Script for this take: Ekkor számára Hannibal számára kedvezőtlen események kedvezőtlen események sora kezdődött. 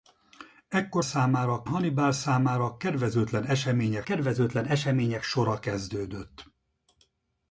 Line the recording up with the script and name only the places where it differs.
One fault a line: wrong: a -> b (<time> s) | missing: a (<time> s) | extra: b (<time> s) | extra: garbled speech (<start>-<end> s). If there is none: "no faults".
no faults